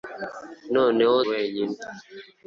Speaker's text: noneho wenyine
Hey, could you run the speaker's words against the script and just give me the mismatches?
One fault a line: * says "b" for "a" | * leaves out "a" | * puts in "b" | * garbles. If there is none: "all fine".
all fine